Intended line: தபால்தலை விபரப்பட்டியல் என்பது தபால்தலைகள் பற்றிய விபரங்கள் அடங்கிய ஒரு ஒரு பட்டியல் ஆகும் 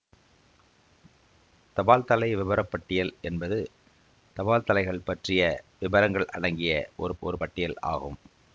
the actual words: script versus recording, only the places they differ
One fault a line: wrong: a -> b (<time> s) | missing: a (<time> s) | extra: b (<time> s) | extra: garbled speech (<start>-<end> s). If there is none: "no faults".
no faults